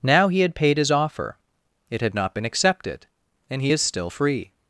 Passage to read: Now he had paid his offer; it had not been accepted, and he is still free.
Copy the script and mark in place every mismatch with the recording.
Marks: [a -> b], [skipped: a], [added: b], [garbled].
Now he had paid his offer; it had not been accepted, and he is still free.